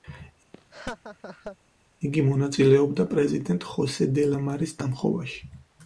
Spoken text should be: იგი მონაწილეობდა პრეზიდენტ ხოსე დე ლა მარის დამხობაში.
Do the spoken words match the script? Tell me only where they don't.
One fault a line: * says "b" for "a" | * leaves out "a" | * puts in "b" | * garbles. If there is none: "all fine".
all fine